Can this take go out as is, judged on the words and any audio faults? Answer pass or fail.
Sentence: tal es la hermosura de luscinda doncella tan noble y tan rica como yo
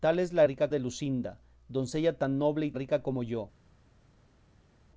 fail